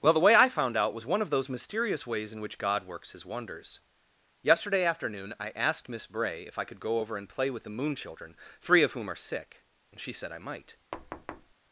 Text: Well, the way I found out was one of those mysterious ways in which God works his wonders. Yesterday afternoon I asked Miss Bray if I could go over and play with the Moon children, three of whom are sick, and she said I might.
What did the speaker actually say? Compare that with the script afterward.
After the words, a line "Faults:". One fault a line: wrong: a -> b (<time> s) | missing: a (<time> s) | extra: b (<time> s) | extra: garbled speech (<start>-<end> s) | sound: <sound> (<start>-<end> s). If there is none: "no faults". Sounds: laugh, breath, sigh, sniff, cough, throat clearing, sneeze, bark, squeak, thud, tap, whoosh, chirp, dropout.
Well, the way I found out was one of those mysterious ways in which God works his wonders. Yesterday afternoon I asked Miss Bray if I could go over and play with the Moon children, three of whom are sick, and she said I might.
Faults:
sound: thud (10.9-11.5 s)